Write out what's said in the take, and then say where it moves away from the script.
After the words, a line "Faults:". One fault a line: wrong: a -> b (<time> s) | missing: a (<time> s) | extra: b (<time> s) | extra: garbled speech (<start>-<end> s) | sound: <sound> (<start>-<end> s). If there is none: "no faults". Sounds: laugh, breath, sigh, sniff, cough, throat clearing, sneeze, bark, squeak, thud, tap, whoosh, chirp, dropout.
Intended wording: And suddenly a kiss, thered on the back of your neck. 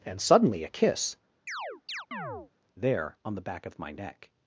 And suddenly a kiss, there on the back of my neck.
Faults:
sound: chirp (1.5-2.5 s)
wrong: thered -> there (2.8 s)
wrong: your -> my (3.8 s)